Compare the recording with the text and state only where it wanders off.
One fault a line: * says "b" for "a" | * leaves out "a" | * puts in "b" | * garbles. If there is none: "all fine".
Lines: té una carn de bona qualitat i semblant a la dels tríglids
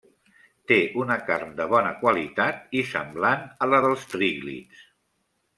all fine